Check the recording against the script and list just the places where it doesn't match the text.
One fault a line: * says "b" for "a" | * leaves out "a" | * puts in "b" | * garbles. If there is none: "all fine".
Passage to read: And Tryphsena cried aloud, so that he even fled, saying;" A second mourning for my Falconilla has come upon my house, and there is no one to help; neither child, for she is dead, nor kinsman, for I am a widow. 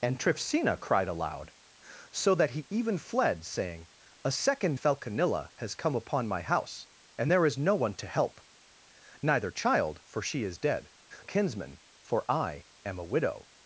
* leaves out "mourning for my"
* leaves out "nor"